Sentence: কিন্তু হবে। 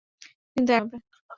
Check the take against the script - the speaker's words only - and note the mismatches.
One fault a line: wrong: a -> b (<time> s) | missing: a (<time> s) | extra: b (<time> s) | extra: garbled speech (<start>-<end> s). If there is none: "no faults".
no faults